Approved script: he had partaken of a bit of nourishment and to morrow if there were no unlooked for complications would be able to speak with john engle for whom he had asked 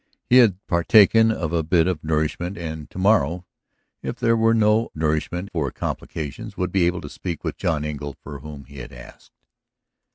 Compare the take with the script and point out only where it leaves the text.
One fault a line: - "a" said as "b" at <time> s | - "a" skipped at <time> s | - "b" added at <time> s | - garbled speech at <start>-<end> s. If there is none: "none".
- "unlooked" said as "nourishment" at 5.0 s